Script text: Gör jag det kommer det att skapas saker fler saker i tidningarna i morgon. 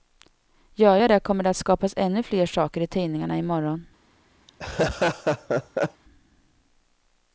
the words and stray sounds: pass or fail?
fail